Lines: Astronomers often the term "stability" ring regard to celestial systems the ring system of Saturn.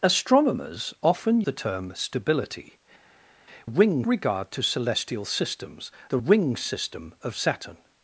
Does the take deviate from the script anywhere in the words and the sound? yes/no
no